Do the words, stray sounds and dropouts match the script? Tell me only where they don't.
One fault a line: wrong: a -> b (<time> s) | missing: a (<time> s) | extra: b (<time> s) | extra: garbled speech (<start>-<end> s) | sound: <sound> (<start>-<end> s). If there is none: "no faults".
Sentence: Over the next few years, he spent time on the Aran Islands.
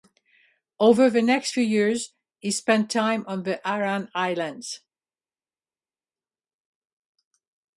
no faults